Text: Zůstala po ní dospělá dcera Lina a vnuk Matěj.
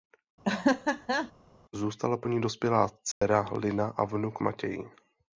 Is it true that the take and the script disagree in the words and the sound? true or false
true